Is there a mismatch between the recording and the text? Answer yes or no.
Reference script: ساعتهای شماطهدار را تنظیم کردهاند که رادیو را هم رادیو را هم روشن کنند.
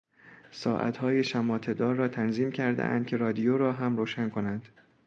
yes